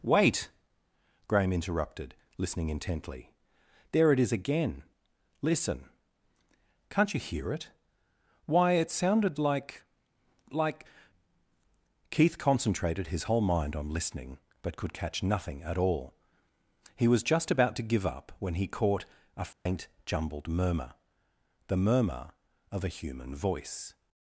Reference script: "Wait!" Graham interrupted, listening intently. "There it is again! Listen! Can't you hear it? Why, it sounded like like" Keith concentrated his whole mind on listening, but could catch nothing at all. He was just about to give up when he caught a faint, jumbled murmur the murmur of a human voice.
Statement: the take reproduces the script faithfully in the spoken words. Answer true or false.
true